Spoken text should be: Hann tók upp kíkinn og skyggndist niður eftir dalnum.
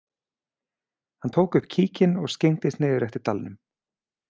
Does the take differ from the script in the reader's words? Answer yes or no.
no